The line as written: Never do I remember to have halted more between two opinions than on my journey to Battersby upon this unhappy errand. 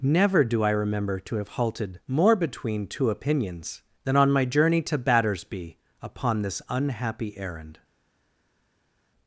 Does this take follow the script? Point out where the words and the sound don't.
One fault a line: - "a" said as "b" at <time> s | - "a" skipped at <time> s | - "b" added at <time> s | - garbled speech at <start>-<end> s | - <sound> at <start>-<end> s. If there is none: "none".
none